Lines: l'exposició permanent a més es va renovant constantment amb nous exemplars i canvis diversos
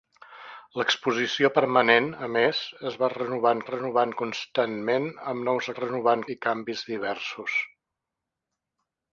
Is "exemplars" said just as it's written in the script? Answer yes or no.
no